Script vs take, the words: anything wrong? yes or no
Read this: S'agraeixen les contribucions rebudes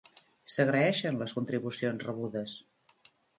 no